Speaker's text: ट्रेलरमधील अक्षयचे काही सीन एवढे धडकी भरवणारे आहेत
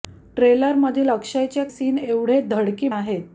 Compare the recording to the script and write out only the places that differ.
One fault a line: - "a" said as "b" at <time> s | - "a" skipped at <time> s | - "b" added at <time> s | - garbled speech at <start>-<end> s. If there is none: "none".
- "काही" skipped at 1.6 s
- "भरवणारे" skipped at 2.9 s